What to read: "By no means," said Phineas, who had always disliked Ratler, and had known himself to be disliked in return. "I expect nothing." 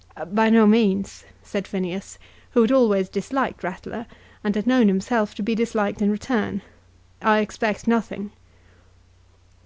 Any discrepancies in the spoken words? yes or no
no